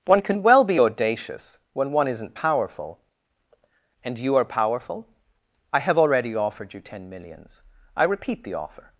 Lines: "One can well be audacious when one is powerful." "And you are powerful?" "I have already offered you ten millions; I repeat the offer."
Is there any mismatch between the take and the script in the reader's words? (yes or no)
yes